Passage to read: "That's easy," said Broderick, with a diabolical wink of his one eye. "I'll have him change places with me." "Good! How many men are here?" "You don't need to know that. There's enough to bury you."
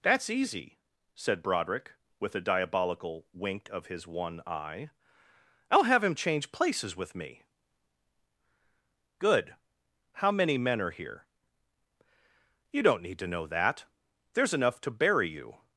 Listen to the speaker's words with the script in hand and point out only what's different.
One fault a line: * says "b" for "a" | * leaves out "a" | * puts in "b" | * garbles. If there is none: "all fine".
all fine